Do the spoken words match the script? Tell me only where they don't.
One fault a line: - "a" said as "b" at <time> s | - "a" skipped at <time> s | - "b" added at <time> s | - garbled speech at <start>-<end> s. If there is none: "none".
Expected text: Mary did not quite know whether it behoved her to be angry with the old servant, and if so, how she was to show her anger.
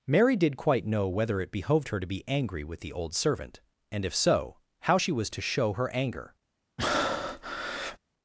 - "not" skipped at 0.6 s